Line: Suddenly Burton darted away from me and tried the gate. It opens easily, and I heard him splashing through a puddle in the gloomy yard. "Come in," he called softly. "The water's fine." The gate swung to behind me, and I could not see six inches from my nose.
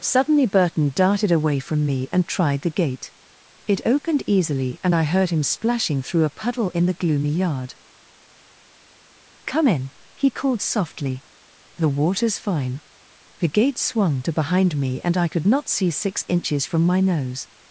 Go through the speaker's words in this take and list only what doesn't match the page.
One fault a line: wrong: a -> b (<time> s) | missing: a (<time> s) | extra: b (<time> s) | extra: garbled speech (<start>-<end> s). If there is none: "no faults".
wrong: opens -> opened (3.9 s)